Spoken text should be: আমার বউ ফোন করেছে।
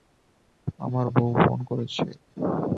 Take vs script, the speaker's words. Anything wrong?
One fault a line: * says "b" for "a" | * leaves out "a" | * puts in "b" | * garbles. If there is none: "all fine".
all fine